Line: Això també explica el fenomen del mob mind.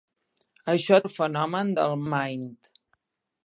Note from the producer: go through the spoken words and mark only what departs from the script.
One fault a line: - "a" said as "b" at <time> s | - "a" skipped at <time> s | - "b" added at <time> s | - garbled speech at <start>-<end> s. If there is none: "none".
- "també explica" skipped at 1.0 s
- "mob" skipped at 2.0 s